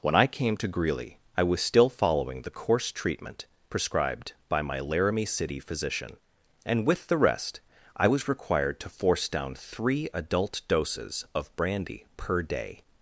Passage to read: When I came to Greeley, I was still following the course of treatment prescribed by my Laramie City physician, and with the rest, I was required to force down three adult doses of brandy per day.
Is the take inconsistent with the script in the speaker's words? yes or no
yes